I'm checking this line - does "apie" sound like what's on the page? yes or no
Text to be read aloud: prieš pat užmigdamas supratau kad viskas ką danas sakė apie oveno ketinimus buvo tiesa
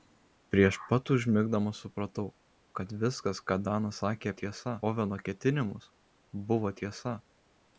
no